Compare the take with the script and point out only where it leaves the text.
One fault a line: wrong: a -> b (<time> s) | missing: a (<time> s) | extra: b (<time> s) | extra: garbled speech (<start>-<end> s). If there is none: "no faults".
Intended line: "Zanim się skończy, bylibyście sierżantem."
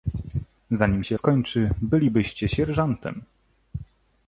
no faults